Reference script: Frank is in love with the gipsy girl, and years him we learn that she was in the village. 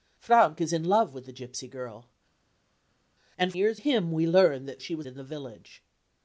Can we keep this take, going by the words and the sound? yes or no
yes